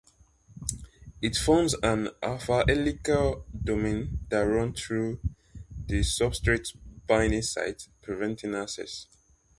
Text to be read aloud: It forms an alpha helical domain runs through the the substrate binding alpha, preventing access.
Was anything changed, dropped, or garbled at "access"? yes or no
no